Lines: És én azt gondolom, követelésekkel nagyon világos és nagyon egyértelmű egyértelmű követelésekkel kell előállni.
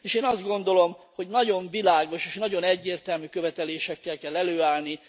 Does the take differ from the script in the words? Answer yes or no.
yes